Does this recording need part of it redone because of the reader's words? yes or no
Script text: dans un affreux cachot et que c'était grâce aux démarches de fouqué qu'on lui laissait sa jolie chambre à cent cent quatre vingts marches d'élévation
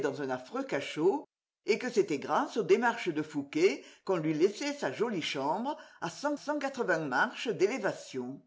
no